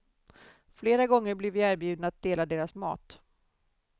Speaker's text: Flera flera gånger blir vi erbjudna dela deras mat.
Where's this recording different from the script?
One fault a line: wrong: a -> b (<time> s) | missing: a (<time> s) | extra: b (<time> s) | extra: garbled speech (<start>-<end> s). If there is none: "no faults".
missing: flera (1.1 s)
extra: att (2.1 s)